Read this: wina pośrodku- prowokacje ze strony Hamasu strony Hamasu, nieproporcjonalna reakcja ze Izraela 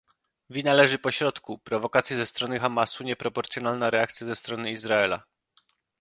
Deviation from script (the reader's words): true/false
true